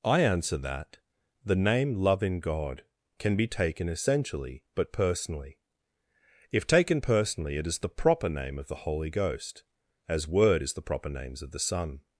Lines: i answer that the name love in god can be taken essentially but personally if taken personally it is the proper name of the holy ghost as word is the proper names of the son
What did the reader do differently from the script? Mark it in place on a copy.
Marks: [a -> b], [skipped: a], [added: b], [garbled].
i answer that the name love in god can be taken essentially but personally if taken personally it is the proper name of the holy ghost as word is the proper names of the son